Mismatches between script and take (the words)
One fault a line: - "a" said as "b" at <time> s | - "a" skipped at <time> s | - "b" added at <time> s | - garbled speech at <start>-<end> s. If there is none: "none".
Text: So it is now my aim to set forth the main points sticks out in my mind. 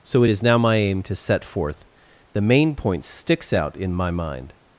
none